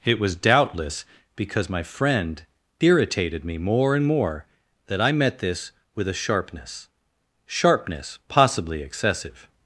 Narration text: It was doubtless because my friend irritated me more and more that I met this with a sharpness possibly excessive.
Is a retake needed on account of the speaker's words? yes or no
yes